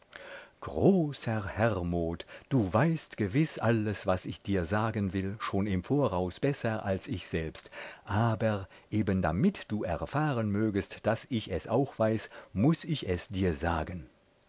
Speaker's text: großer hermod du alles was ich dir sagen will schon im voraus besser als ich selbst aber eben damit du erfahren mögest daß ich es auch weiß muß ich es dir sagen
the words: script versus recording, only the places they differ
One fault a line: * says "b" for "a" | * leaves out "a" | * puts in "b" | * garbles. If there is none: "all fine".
* puts in "weißt gewiß"